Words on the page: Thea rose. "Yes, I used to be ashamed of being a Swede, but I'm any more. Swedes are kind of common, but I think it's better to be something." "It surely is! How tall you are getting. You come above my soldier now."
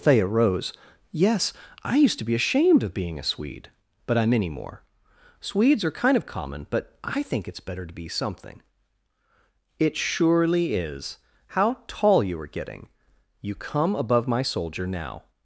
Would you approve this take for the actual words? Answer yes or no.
yes